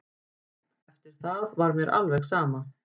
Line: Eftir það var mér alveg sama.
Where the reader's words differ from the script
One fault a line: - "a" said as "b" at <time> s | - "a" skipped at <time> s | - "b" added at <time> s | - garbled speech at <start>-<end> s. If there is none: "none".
none